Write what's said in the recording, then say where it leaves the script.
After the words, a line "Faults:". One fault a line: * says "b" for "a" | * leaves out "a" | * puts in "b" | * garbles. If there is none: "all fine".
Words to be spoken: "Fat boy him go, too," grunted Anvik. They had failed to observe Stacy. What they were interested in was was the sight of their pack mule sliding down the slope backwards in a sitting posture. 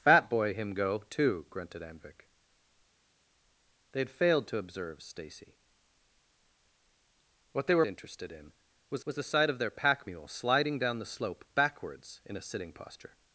"Fat boy him go, too," grunted Anvik. They had failed to observe Stacy. What they were interested in was was the sight of their pack mule sliding down the slope backwards in a sitting posture.
Faults:
all fine